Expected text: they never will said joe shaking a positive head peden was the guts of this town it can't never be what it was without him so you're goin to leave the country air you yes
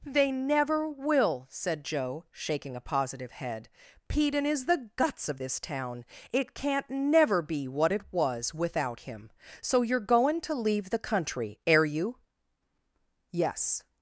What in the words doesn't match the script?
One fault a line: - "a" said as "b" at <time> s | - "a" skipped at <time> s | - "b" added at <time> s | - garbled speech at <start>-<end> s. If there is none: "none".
- "was" said as "is" at 4.5 s